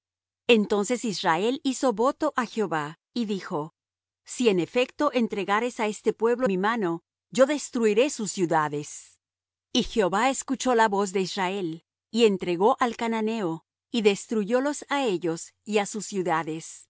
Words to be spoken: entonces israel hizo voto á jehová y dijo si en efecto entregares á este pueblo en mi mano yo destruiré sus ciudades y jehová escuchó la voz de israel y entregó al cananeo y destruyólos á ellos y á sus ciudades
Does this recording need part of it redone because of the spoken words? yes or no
yes